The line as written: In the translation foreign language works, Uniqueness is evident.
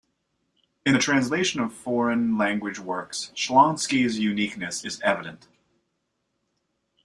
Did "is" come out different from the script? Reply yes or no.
no